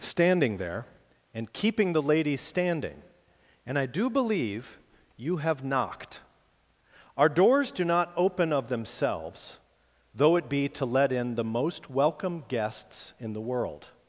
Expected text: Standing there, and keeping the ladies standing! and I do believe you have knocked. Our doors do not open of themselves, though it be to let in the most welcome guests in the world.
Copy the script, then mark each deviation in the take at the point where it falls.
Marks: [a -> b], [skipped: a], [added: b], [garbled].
Standing there, and keeping the ladies standing! and I do believe you have knocked. Our doors do not open of themselves, though it be to let in the most welcome guests in the world.